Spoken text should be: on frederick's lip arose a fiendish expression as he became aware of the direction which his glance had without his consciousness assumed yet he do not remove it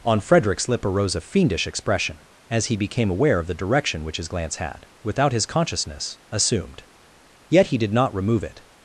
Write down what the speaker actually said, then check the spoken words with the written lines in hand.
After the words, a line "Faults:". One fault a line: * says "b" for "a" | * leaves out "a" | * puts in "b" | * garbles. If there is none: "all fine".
on frederick's lip arose a fiendish expression as he became aware of the direction which his glance had without his consciousness assumed yet he did not remove it
Faults:
* says "did" for "do"